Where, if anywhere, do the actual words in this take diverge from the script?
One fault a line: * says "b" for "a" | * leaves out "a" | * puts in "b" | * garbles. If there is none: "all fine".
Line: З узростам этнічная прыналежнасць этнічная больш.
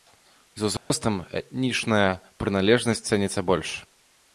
* says "цэніцца" for "этнічная"